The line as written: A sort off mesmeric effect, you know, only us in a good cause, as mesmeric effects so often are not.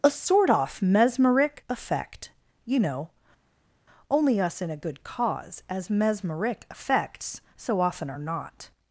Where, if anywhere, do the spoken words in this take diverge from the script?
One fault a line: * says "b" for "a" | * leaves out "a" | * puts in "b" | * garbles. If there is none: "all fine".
all fine